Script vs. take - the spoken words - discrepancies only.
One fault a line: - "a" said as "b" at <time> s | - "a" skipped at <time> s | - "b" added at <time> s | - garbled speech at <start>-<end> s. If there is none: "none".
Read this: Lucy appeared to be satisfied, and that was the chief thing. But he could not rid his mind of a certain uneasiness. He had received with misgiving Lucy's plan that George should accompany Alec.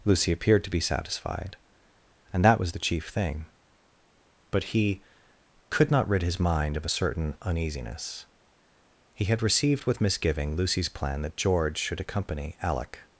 none